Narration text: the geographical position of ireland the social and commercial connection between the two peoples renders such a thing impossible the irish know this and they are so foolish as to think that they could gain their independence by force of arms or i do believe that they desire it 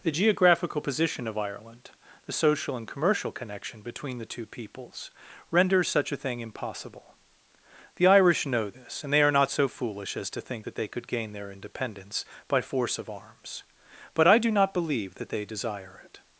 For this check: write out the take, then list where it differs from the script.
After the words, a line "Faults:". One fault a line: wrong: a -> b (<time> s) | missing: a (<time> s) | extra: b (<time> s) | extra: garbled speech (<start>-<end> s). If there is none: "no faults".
the geographical position of ireland the social and commercial connection between the two peoples renders such a thing impossible the irish know this and they are not so foolish as to think that they could gain their independence by force of arms but i do not believe that they desire it
Faults:
extra: not (9.3 s)
wrong: or -> but (14.1 s)
extra: not (14.5 s)